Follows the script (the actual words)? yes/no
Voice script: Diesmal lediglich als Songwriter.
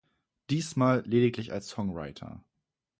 yes